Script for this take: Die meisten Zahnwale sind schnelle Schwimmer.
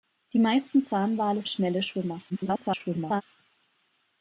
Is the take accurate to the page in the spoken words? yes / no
no